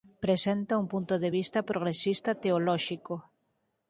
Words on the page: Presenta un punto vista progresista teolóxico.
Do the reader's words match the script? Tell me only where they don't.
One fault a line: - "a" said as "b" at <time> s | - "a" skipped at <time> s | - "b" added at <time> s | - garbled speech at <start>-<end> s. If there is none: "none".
- "de" added at 1.2 s